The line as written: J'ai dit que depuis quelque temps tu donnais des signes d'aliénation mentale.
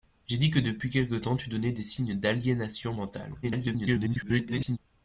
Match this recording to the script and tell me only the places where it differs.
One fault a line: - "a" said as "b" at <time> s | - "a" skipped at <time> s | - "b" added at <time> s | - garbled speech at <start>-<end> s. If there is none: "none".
- garbled speech at 3.4-4.8 s